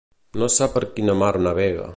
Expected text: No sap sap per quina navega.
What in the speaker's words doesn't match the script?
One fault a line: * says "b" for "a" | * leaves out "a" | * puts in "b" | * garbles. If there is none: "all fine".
* leaves out "sap"
* puts in "mar"